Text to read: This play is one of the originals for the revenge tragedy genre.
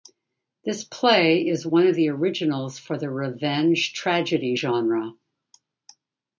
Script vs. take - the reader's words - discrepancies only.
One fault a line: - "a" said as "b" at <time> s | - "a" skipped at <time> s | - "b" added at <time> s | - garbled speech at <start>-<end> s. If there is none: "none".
none